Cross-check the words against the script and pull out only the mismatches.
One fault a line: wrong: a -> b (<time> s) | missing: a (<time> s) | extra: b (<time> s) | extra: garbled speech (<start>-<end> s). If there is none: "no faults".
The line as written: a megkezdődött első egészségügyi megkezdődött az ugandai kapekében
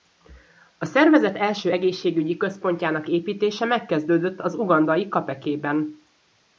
wrong: megkezdődött -> szervezet (0.8 s)
extra: központjának építése (2.4 s)